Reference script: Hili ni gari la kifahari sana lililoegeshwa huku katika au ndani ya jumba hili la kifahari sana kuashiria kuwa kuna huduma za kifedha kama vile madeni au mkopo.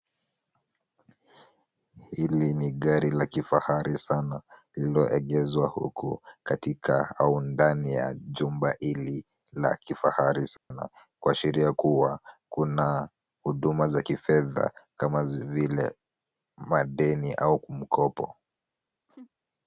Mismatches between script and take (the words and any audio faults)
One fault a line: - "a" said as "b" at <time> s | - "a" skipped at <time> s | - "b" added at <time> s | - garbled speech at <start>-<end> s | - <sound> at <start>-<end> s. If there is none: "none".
- dropout at 10.6-10.7 s
- laugh at 19.1-19.3 s